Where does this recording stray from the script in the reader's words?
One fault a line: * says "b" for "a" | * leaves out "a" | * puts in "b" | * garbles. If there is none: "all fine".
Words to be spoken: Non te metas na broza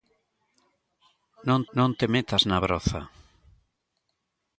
* puts in "non"